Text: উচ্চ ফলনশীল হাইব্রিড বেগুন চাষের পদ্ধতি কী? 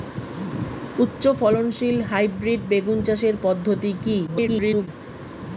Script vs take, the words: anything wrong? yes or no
yes